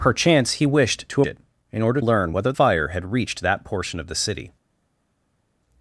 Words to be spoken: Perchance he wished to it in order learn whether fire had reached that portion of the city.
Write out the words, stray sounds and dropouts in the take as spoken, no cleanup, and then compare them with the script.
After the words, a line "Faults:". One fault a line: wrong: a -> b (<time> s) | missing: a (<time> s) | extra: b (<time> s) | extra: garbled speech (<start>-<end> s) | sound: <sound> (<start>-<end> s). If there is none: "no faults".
Perchance he wished to it in order learn whether fire had reached that portion of the city.
Faults:
no faults